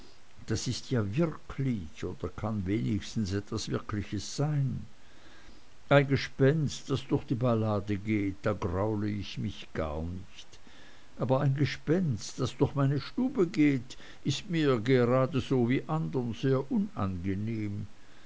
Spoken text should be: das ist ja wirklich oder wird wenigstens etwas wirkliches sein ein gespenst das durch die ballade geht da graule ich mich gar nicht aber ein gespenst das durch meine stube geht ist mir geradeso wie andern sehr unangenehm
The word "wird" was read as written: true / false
false